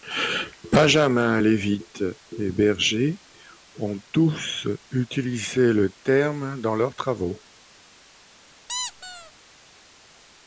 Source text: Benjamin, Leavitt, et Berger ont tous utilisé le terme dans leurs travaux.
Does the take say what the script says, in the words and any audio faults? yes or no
no